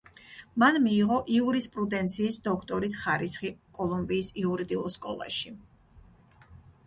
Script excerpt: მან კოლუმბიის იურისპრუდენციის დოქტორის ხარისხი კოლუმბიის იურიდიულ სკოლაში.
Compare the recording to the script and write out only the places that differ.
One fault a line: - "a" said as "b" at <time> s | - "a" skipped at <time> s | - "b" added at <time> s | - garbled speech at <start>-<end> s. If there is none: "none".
- "კოლუმბიის" said as "მიიღო" at 0.8 s